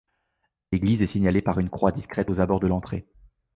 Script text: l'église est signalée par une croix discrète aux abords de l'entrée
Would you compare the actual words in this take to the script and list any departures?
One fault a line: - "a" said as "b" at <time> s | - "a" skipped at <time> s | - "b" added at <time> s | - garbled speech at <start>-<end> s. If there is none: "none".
none